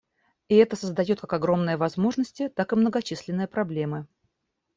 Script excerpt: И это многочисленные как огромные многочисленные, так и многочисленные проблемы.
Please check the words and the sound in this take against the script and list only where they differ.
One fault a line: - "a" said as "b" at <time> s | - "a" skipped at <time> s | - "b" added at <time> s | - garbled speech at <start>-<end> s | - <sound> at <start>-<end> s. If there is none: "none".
- "многочисленные" said as "создает" at 0.8 s
- "многочисленные" said as "возможности" at 1.8 s